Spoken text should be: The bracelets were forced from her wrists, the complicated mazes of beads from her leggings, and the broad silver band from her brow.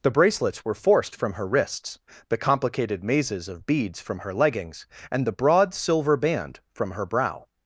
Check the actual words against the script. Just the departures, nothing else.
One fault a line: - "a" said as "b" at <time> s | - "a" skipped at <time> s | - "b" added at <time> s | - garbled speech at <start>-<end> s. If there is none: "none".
none